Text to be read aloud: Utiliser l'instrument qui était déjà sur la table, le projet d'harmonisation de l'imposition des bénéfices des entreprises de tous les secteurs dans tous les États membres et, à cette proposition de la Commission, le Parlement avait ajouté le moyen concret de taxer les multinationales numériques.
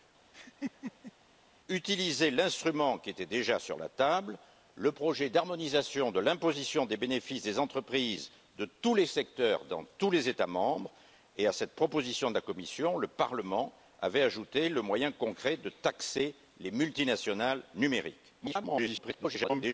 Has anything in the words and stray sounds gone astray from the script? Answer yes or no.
yes